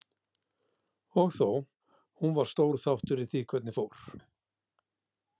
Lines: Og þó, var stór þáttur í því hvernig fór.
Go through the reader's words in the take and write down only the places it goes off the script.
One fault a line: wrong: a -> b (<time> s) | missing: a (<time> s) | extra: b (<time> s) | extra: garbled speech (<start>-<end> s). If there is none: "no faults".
extra: hún (2.2 s)